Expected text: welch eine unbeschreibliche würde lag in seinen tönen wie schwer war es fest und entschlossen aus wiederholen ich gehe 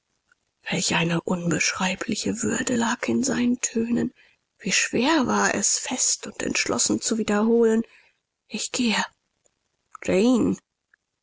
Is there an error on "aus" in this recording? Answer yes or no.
yes